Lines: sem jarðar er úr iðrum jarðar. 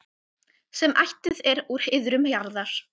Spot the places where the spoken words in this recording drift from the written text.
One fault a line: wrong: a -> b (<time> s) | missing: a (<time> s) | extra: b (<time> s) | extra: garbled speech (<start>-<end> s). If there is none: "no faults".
wrong: jarðar -> ættuð (1.0 s)